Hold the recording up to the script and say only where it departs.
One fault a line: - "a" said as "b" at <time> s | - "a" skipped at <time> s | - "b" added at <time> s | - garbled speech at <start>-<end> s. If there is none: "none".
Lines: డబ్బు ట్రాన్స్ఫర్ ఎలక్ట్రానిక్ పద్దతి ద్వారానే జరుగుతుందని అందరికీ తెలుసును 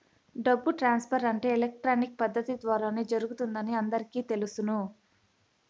- "అంటే" added at 1.3 s